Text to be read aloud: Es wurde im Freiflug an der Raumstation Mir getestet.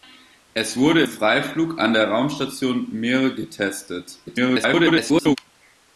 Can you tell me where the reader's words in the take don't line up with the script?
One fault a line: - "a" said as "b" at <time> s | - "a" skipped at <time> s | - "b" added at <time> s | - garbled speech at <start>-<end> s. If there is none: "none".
- "im" skipped at 1.0 s
- garbled speech at 4.3-5.4 s